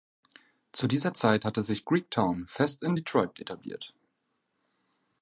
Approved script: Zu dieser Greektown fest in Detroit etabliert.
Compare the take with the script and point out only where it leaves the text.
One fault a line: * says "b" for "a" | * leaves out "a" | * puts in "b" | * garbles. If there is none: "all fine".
* puts in "Zeit hatte sich"